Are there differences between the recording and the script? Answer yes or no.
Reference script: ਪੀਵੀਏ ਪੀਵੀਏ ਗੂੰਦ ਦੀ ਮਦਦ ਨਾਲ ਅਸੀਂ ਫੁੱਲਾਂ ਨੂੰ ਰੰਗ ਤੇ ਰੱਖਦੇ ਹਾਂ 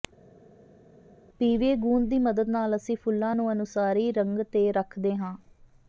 yes